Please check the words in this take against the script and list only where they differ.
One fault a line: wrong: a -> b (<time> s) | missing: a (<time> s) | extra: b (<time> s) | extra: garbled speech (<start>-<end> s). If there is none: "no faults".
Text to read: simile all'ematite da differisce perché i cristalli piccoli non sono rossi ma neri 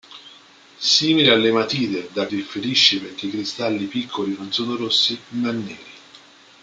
no faults